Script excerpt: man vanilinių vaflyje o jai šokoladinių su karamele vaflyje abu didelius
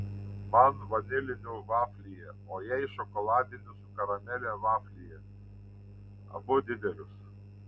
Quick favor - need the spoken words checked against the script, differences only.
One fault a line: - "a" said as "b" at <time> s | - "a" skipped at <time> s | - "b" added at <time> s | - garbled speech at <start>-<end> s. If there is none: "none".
none